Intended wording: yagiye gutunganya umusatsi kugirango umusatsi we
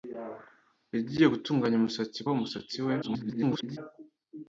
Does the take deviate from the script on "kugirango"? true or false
true